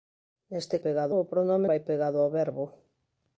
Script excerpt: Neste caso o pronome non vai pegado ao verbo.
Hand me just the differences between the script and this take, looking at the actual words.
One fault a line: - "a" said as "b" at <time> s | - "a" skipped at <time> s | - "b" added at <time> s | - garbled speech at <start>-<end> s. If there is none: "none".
- "caso" said as "pegado" at 0.9 s
- "non" skipped at 1.7 s